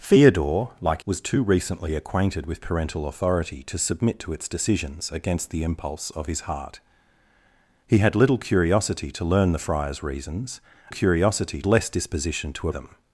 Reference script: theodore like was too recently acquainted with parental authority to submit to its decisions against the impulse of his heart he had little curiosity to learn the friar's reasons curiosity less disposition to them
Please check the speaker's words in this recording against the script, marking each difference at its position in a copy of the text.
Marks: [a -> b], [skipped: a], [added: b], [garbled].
theodore like was too recently acquainted with parental authority to submit to its decisions against the impulse of his heart he had little curiosity to learn the friar's reasons curiosity less disposition to them